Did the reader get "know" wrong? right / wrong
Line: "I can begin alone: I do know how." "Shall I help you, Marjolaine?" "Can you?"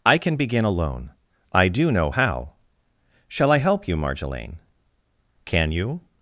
right